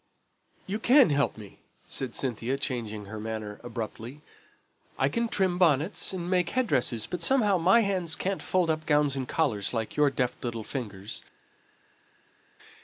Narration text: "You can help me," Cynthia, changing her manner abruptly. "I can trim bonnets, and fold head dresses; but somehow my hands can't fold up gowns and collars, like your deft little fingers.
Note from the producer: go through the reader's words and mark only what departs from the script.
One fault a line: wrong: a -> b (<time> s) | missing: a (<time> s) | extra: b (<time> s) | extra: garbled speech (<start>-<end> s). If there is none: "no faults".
extra: said (1.9 s)
wrong: fold -> make (6.3 s)